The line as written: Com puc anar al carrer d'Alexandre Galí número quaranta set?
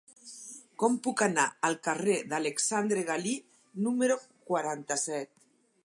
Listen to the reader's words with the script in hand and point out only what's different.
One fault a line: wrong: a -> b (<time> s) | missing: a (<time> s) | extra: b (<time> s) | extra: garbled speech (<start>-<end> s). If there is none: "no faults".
no faults